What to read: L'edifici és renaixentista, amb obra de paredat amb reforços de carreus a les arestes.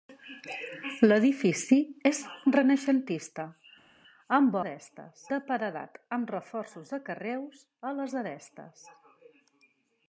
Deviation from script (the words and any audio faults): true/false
true